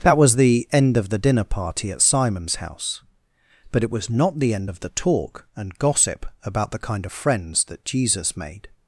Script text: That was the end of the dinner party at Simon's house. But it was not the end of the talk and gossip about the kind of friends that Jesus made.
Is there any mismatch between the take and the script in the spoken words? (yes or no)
no